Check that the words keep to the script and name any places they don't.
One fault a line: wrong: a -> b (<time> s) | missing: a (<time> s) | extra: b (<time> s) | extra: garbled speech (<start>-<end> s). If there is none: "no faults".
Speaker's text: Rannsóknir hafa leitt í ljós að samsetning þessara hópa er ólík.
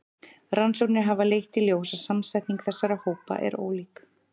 no faults